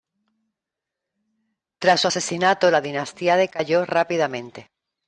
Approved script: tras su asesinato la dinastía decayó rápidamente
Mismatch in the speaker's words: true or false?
false